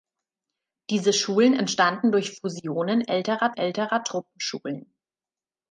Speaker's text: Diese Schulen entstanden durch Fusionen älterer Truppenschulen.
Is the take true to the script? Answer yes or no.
no